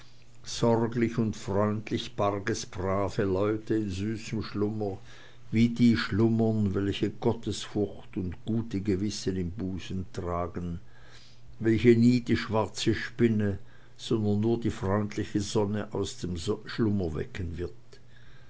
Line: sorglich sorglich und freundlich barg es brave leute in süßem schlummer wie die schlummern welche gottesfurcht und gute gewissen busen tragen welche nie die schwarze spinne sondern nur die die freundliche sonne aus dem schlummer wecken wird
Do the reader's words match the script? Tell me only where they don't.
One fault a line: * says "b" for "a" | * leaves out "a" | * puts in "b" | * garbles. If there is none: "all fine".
* leaves out "sorglich"
* puts in "im"
* leaves out "die"